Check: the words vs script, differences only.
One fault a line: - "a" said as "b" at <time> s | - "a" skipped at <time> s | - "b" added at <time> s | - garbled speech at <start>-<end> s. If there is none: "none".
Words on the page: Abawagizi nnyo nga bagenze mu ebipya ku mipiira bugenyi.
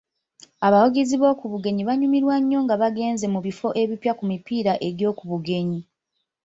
- "b'oku bugenyi banyumirwa" added at 1.2 s
- "bifo" added at 3.5 s
- "egy'oku" added at 4.9 s